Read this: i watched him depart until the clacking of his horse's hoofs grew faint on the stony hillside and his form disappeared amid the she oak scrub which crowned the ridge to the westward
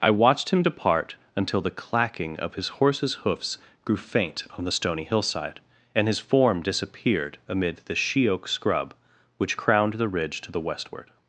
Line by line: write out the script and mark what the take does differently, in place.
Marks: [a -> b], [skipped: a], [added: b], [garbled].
i watched him depart until the clacking of his horse's hoofs grew faint on the stony hillside and his form disappeared amid the she oak scrub which crowned the ridge to the westward